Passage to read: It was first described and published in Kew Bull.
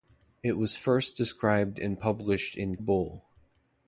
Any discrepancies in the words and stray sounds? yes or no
yes